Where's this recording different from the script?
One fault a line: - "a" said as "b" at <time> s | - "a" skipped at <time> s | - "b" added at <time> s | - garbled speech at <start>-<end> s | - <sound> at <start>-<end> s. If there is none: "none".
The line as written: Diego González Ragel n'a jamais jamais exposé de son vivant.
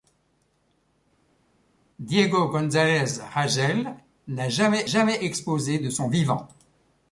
none